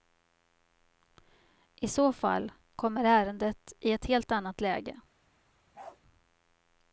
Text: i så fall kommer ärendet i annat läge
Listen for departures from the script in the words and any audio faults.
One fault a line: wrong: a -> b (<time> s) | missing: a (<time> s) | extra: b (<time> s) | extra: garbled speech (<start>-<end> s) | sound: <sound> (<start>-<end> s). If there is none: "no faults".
extra: ett helt (3.9 s)
sound: bark (5.7-6.0 s)